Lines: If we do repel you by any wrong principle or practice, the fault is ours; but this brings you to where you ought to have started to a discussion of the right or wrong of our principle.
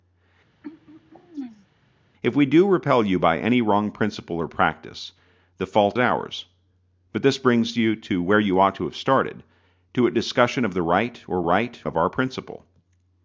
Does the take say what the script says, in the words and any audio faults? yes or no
no